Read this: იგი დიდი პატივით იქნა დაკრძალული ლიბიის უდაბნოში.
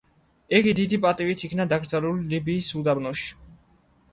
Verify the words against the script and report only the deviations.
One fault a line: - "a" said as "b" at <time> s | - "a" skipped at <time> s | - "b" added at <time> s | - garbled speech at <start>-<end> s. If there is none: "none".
none